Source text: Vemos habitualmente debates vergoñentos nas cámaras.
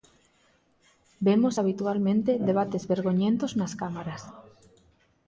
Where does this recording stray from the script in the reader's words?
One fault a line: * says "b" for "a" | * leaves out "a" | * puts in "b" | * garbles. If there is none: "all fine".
all fine